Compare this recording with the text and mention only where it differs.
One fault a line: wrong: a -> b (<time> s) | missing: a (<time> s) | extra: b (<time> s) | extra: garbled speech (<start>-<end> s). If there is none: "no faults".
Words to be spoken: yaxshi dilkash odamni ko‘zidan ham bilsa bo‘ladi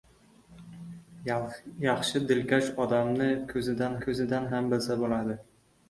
extra: ko‘zidan (4.0 s)